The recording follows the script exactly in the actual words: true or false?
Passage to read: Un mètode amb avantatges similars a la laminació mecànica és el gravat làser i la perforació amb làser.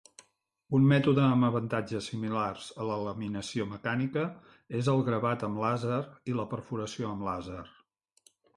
false